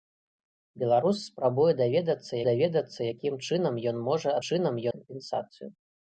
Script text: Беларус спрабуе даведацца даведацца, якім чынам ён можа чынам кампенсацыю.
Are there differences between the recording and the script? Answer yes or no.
no